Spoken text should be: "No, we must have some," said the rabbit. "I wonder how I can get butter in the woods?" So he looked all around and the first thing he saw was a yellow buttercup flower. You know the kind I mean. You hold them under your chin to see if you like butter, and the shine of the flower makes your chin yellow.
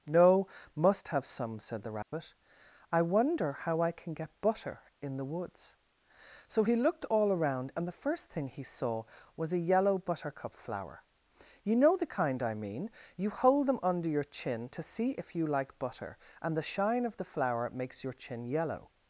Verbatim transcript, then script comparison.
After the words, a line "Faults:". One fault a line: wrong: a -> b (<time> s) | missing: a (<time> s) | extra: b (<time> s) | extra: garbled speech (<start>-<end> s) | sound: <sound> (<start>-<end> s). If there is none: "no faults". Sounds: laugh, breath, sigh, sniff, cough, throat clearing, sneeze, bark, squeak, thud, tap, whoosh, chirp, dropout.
"No, must have some," said the rabbit. "I wonder how I can get butter in the woods?" So he looked all around and the first thing he saw was a yellow buttercup flower. You know the kind I mean. You hold them under your chin to see if you like butter, and the shine of the flower makes your chin yellow.
Faults:
missing: we (0.5 s)
sound: dropout (2.0-2.1 s)